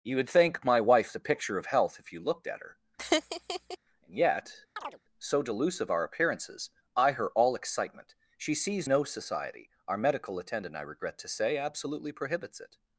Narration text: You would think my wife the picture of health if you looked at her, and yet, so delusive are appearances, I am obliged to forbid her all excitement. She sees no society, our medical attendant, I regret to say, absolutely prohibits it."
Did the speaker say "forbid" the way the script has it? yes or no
no